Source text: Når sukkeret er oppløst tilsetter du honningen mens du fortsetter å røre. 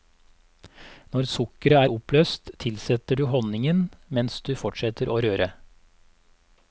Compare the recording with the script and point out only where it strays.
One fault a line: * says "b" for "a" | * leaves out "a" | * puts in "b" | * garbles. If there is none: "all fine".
all fine